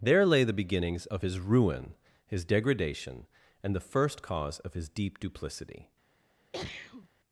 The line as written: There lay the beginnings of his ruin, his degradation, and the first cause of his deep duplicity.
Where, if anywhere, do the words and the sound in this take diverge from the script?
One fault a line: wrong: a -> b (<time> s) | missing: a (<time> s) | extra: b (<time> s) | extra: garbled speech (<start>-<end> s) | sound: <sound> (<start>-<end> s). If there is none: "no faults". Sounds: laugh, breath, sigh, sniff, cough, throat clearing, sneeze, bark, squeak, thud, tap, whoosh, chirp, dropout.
sound: sneeze (6.5-7.1 s)